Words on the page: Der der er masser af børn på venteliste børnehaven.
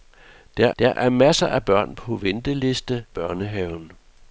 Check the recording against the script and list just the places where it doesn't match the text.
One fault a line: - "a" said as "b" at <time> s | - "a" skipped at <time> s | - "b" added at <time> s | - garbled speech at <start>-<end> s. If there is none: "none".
none